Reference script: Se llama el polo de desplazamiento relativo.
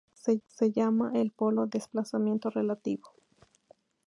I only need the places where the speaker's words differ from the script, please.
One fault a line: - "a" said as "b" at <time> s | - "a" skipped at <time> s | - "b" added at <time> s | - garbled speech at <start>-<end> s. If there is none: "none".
- "se" added at 0.5 s
- "de" skipped at 1.7 s